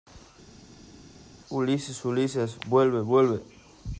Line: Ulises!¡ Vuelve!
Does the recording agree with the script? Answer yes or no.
no